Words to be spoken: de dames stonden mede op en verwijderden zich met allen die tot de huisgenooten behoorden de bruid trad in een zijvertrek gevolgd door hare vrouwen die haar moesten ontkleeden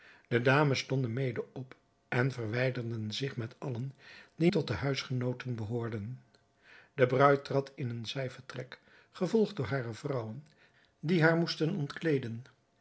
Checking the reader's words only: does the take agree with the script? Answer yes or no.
yes